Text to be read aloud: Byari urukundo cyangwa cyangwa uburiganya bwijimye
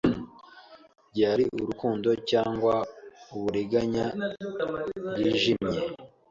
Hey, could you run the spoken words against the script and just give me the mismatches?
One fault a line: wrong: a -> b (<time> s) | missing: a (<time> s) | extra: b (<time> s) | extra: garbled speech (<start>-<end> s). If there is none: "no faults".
missing: cyangwa (2.7 s)